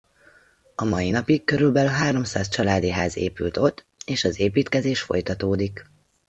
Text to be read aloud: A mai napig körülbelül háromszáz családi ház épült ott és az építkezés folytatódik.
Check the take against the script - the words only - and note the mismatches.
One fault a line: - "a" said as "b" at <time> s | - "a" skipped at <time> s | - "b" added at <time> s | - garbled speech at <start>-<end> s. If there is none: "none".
none